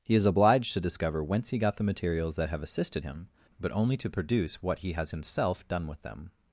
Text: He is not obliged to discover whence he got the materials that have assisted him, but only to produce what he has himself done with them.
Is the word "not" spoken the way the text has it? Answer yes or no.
no